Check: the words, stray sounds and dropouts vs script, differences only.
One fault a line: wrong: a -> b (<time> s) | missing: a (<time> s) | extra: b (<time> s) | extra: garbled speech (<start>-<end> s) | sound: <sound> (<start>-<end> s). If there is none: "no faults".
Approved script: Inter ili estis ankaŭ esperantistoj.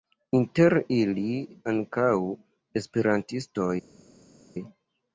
missing: estis (1.2 s)